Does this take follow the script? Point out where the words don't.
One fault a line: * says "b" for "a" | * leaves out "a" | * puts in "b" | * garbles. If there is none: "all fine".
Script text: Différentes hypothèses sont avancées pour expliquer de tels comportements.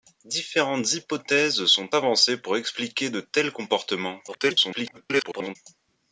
* garbles